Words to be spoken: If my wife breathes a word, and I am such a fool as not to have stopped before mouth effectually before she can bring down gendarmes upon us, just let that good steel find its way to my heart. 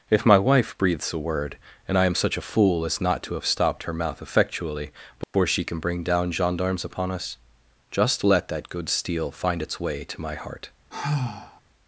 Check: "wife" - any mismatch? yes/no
no